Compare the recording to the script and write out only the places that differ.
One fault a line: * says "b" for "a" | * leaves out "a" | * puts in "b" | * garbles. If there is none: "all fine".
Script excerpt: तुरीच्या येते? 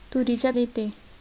all fine